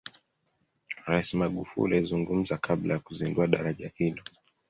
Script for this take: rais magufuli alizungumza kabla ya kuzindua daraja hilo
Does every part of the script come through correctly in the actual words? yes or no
yes